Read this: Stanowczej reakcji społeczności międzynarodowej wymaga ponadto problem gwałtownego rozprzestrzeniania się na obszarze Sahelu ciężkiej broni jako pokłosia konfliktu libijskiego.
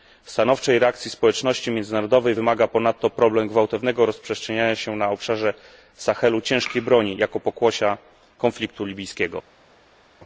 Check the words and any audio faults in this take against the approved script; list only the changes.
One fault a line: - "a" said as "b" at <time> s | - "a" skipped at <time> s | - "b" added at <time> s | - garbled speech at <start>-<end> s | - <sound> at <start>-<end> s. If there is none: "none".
none